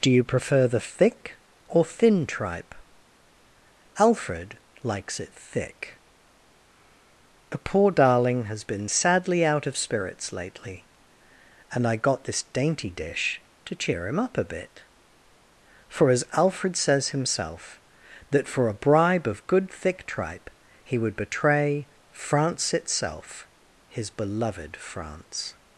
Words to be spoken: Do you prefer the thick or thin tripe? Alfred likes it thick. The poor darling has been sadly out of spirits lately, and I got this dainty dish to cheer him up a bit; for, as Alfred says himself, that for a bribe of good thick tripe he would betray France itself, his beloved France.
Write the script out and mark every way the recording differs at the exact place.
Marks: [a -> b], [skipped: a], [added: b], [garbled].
Do you prefer the thick or thin tripe? Alfred likes it thick. The poor darling has been sadly out of spirits lately, and I got this dainty dish to cheer him up a bit; for, as Alfred says himself, that for a bribe of good thick tripe he would betray France itself, his beloved France.